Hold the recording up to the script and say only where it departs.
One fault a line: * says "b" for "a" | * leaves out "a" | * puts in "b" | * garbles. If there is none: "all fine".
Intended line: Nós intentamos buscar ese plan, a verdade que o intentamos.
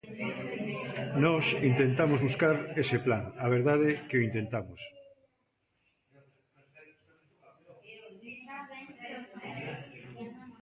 all fine